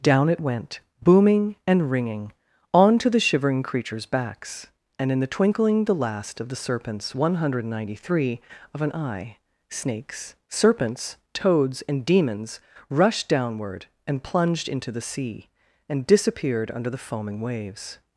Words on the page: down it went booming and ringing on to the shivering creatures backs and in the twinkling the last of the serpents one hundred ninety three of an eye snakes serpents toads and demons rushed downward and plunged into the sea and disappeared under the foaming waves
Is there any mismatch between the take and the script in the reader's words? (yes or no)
no